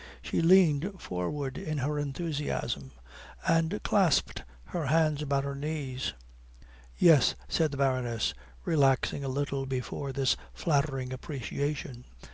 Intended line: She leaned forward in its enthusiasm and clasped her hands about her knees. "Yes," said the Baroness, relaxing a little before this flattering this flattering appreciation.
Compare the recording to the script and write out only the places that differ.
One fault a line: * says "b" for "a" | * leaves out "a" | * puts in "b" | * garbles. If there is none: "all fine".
* says "her" for "its"
* leaves out "this flattering"